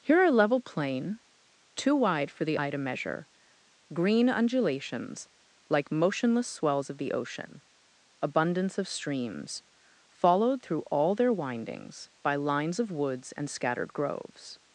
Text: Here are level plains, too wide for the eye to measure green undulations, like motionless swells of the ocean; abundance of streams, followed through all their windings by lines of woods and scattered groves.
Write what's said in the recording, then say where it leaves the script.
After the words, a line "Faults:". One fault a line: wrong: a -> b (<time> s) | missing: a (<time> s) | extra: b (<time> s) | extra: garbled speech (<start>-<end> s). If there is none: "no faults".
Here are level plain, too wide for the eye to measure green undulations, like motionless swells of the ocean; abundance of streams, followed through all their windings by lines of woods and scattered groves.
Faults:
wrong: plains -> plain (0.6 s)